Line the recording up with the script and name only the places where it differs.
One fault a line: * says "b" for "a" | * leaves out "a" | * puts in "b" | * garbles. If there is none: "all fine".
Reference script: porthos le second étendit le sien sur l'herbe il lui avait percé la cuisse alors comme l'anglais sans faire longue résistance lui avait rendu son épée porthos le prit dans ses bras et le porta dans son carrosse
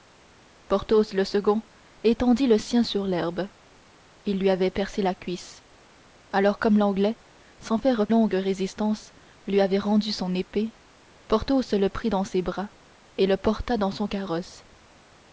all fine